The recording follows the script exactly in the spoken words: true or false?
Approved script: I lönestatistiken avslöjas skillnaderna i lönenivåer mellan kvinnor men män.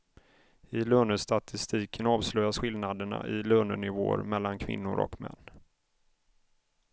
false